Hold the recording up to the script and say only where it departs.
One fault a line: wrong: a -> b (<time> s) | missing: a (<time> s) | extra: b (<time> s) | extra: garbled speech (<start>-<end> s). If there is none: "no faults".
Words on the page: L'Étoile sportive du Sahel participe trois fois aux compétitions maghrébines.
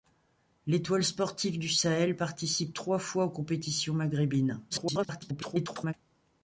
extra: garbled speech (4.7-5.9 s)